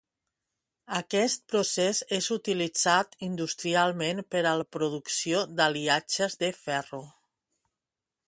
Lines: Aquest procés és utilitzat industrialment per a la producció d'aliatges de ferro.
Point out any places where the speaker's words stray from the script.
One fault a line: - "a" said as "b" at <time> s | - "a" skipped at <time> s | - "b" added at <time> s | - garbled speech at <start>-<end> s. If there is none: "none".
none